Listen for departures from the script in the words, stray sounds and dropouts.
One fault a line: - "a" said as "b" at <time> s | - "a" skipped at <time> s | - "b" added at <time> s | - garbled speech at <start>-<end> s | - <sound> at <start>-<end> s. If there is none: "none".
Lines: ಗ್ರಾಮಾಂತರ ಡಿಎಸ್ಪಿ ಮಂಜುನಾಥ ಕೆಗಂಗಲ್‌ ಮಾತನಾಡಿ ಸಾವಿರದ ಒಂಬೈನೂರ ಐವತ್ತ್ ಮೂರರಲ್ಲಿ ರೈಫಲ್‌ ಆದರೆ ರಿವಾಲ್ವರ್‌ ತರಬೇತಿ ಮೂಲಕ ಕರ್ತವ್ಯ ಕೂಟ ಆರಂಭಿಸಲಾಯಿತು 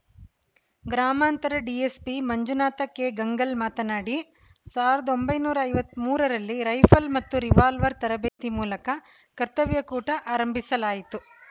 - "ಆದರೆ" said as "ಮತ್ತು" at 7.2 s
- dropout at 8.3-8.4 s